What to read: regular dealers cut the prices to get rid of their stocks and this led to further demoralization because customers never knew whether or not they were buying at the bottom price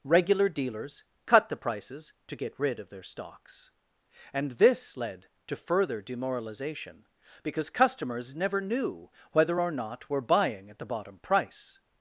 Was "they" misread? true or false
true